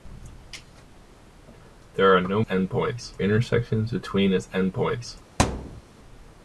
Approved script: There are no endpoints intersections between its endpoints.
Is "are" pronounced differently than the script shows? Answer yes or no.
no